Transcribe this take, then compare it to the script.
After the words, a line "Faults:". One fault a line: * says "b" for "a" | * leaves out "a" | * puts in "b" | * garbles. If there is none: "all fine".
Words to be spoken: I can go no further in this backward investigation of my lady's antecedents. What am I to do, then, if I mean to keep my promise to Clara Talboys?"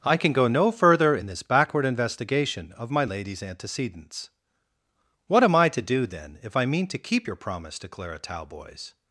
I can go no further in this backward investigation of my lady's antecedents. What am I to do, then, if I mean to keep your promise to Clara Talboys?"
Faults:
* says "your" for "my"